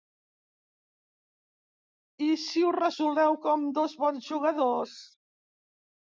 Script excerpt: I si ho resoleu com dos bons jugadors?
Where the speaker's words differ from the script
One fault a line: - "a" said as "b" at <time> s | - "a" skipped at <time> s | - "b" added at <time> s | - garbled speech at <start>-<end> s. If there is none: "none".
none